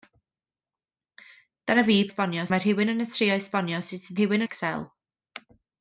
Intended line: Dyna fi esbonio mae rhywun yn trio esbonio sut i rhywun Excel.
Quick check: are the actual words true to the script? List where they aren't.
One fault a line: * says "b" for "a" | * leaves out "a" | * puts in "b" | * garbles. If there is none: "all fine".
all fine